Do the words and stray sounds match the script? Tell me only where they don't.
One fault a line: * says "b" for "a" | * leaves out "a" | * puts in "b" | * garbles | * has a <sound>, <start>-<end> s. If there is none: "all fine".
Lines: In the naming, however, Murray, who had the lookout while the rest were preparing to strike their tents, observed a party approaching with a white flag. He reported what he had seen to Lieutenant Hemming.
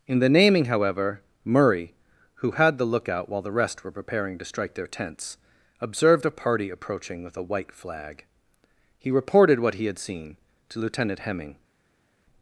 all fine